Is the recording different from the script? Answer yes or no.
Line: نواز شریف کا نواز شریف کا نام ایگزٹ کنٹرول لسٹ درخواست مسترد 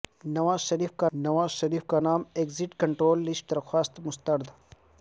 no